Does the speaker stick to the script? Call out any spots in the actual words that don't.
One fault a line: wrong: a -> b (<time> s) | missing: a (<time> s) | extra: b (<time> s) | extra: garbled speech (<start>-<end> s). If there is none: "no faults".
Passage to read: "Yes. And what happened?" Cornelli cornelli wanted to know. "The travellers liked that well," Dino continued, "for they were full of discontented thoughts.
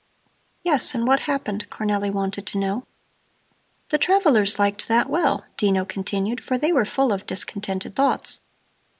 missing: cornelli (2.1 s)